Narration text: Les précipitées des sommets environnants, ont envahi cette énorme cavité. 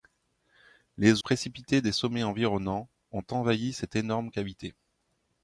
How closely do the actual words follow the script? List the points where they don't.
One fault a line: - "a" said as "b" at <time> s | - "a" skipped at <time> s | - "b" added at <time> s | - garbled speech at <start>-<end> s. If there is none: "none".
none